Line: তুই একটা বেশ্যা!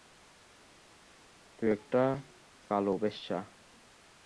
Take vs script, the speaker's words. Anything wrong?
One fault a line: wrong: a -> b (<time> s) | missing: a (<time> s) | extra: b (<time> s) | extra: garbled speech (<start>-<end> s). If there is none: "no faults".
extra: কালো (2.7 s)